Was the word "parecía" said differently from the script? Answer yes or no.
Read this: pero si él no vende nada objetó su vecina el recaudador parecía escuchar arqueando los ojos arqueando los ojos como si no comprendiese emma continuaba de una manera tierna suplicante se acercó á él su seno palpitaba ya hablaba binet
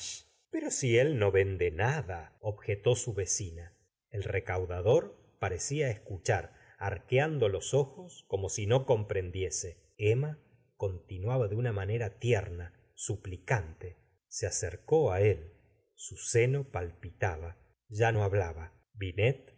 no